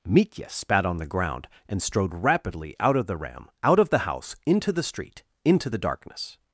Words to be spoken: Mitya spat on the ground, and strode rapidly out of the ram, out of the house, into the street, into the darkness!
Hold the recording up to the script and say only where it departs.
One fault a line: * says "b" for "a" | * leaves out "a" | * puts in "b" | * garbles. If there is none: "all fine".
all fine